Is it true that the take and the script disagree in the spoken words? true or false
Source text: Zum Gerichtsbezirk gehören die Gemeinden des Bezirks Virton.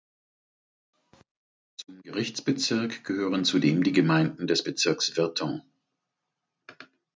true